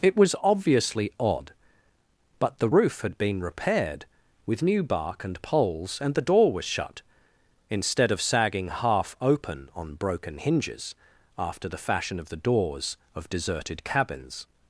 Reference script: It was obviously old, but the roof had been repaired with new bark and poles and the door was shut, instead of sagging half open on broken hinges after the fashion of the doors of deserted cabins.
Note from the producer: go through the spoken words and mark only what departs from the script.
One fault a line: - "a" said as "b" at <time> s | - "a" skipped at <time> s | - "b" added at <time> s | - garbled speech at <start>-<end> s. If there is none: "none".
- "old" said as "odd" at 1.2 s